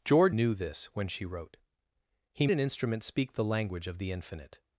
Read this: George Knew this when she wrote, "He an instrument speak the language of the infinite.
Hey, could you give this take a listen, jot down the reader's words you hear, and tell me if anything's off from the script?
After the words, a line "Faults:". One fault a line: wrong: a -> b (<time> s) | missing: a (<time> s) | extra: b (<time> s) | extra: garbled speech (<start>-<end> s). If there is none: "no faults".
George Knew this when she wrote, "He an instrument speak the language of the infinite.
Faults:
no faults